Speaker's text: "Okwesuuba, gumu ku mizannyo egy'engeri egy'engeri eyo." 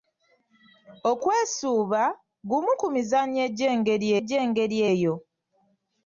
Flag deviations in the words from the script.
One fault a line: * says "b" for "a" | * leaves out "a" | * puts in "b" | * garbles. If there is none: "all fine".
all fine